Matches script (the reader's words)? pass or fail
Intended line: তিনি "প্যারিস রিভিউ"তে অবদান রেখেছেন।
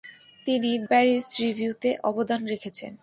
pass